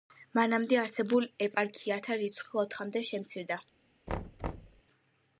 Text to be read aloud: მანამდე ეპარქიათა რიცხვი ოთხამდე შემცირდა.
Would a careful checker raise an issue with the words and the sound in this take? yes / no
yes